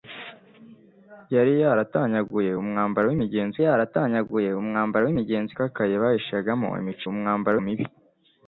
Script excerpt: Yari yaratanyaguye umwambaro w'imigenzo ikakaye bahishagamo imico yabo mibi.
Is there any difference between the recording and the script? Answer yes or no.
yes